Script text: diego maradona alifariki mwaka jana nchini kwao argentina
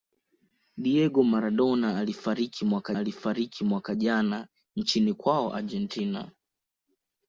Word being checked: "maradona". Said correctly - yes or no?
yes